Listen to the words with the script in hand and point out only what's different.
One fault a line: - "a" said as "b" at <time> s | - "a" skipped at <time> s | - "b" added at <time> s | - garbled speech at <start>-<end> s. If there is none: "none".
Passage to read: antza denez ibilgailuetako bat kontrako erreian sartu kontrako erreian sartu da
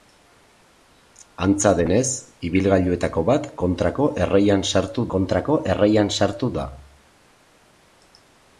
none